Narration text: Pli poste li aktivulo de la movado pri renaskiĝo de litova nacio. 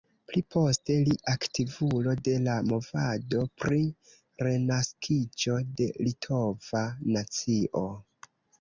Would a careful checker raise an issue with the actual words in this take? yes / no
no